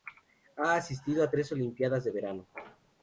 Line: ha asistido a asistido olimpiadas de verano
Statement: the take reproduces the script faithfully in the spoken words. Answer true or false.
false